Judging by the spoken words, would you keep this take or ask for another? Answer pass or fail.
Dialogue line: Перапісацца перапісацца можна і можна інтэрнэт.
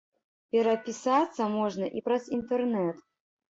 fail